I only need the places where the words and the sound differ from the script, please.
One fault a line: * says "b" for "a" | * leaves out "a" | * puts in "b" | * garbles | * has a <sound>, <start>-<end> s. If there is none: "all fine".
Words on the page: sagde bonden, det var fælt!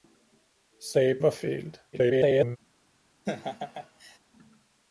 * leaves out "bonden det"
* garbles
* has a laugh, 3.2-4.2 s